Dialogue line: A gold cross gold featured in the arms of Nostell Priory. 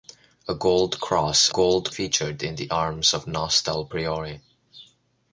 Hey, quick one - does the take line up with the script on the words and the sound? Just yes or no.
yes